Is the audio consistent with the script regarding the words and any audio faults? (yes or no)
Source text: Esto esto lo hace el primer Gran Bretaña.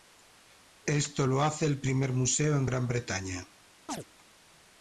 no